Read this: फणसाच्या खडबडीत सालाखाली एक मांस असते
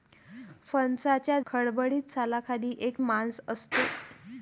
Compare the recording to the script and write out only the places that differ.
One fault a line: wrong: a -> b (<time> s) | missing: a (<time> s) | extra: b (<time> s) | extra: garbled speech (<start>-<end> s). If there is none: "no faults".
no faults